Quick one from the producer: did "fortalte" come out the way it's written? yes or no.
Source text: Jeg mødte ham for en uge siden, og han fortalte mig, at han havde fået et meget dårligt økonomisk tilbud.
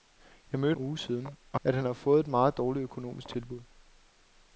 no